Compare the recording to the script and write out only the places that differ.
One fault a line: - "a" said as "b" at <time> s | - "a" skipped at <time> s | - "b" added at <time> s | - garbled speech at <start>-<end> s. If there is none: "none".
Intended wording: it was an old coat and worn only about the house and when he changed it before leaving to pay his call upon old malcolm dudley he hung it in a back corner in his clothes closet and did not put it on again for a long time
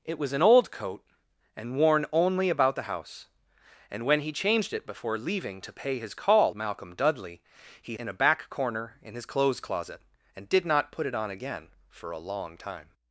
- "upon old" skipped at 6.5 s
- "hung it" skipped at 8.0 s